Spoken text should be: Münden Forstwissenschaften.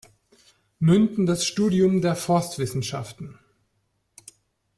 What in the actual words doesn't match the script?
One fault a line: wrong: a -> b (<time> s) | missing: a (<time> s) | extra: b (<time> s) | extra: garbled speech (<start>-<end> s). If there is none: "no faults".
extra: das Studium der (1.3 s)